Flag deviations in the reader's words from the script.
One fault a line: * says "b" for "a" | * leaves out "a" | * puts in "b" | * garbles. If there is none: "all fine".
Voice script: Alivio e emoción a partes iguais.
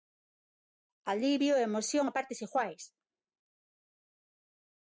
all fine